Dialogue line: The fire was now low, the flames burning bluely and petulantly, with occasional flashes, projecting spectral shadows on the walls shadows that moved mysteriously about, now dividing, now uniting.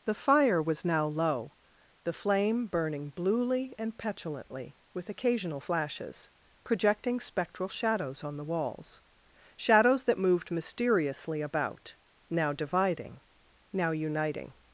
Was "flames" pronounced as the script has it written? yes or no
no